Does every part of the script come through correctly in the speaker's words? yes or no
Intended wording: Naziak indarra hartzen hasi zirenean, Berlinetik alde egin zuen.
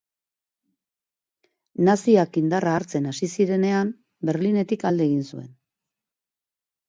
yes